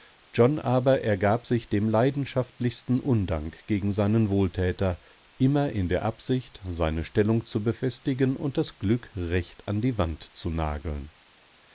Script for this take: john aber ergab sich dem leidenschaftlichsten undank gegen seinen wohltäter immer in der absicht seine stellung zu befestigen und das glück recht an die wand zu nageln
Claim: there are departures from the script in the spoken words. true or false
false